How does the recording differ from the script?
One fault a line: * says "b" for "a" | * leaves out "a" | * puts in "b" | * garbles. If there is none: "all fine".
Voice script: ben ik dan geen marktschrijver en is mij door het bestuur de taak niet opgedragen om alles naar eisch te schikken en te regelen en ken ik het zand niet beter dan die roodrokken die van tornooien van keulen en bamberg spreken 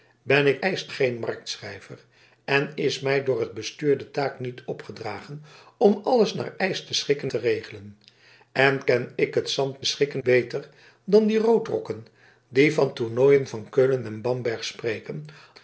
* says "eisch" for "dan"
* leaves out "en"
* says "schikken" for "niet"